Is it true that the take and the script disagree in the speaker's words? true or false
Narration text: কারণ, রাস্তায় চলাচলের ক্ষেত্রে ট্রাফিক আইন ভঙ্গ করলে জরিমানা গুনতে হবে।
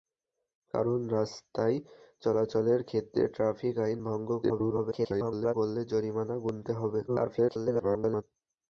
true